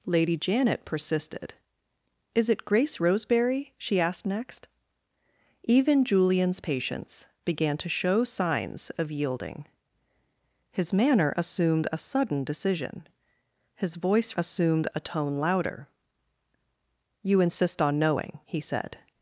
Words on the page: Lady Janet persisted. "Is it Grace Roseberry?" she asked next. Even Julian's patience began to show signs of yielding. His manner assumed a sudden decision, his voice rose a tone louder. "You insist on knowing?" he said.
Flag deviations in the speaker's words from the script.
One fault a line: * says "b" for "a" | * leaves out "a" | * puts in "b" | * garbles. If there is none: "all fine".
* says "assumed" for "rose"